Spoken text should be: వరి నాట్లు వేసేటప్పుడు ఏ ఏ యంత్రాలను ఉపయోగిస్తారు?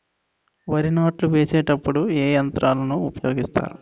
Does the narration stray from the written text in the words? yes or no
yes